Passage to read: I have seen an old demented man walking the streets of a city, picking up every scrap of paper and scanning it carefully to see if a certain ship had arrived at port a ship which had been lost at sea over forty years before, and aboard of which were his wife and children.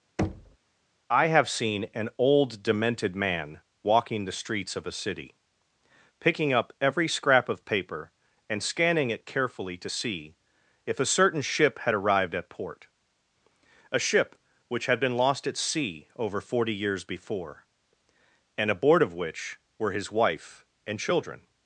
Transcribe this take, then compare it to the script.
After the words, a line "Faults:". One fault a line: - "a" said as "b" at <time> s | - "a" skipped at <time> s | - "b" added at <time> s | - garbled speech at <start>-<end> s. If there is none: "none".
I have seen an old demented man walking the streets of a city, picking up every scrap of paper and scanning it carefully to see if a certain ship had arrived at port a ship which had been lost at sea over forty years before, and aboard of which were his wife and children.
Faults:
none